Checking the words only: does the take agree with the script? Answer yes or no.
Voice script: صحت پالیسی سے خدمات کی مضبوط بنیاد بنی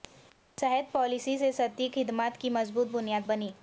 no